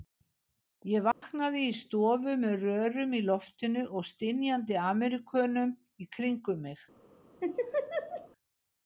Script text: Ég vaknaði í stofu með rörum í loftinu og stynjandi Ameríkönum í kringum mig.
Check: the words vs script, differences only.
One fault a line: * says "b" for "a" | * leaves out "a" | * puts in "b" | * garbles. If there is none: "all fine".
all fine